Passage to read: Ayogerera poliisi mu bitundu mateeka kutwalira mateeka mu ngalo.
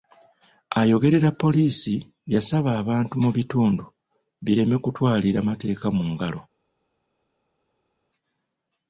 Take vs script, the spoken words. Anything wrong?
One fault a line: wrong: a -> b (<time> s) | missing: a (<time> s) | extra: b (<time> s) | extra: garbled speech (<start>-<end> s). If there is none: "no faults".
extra: yasaba abantu (2.3 s)
wrong: mateeka -> bireme (4.4 s)